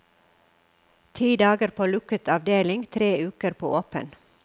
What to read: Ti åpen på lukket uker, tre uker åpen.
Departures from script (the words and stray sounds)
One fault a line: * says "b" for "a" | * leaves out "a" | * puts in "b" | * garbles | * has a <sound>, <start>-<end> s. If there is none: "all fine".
* says "dager" for "åpen"
* says "avdeling" for "uker"
* puts in "på"